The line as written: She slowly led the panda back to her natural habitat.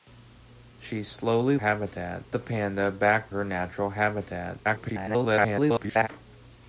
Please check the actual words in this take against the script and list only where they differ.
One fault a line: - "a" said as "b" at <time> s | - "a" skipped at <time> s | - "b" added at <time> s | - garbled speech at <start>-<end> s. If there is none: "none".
- "led" said as "habitat" at 1.5 s
- "to" skipped at 3.3 s
- garbled speech at 4.6-6.1 s